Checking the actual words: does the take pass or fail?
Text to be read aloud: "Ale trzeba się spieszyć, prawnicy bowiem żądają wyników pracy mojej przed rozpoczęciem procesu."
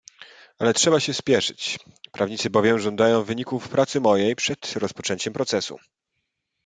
pass